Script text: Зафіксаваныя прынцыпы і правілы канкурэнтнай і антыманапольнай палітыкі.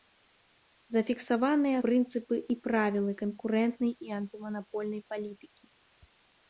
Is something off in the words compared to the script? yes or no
no